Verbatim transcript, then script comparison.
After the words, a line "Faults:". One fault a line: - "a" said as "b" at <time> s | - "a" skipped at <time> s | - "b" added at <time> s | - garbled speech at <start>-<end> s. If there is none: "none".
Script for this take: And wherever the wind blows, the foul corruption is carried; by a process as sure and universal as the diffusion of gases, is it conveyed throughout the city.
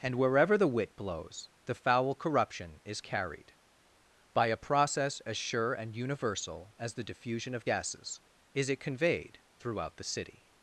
And wherever the wit blows, the foul corruption is carried; by a process as sure and universal as the diffusion of gases, is it conveyed throughout the city.
Faults:
- "wind" said as "wit" at 0.7 s